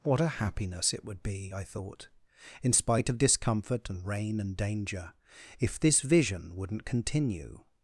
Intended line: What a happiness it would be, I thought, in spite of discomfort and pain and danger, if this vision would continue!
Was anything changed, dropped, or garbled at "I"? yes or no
no